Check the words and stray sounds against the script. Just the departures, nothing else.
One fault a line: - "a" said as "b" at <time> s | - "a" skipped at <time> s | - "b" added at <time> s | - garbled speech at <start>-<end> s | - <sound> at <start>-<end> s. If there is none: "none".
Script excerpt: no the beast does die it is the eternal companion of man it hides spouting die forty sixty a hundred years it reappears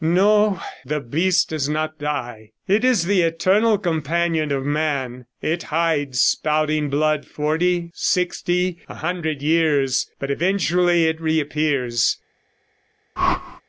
- "not" added at 1.7 s
- "die" said as "blood" at 6.9 s
- "but eventually" added at 10.2 s
- whoosh at 13.2-13.6 s